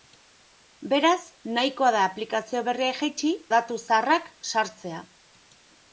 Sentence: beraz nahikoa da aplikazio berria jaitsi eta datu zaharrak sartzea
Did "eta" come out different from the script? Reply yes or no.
yes